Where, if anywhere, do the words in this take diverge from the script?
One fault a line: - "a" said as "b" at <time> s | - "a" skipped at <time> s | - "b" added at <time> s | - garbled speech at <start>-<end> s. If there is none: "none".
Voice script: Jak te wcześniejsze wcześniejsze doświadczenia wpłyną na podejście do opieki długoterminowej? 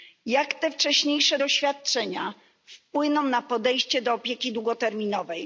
- "wcześniejsze" skipped at 1.4 s